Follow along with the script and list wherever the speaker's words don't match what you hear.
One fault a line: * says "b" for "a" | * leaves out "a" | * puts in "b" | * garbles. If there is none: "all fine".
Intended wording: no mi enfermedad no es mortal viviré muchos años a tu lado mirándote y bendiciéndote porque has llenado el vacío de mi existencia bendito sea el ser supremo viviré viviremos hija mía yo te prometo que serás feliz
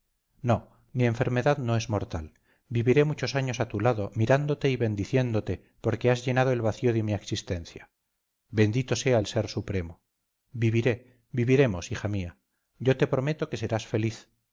all fine